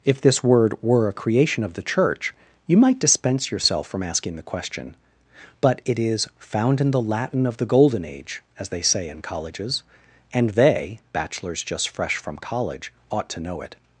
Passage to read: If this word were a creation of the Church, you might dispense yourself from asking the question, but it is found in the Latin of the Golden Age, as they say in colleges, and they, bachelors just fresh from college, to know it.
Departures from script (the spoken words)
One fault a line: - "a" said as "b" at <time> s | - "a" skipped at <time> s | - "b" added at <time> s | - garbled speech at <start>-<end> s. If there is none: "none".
- "ought" added at 13.1 s